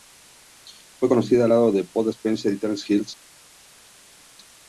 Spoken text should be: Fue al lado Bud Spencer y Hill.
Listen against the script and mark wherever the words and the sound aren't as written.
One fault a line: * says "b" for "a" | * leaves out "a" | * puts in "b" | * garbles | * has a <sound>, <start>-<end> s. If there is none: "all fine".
* puts in "conocida"
* puts in "de"
* puts in "Terence"